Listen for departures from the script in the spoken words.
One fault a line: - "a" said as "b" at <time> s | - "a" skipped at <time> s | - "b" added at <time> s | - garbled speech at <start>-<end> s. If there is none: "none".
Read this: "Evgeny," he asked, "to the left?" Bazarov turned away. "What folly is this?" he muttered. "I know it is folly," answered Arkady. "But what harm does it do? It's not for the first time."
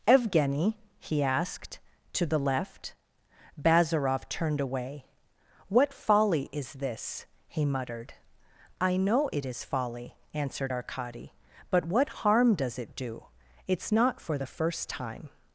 none